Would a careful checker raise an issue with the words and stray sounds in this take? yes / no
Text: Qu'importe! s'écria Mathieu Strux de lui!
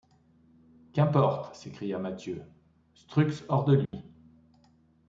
yes